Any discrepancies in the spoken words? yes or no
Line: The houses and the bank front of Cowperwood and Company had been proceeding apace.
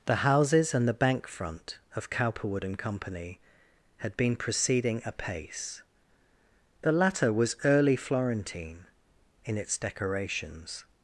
yes